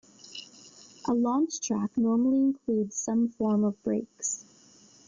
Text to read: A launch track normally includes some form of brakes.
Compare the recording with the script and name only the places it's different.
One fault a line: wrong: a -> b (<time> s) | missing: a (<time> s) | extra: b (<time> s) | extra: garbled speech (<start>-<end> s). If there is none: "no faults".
no faults